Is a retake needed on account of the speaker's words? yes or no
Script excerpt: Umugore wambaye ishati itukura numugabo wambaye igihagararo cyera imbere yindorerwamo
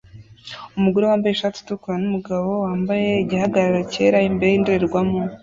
no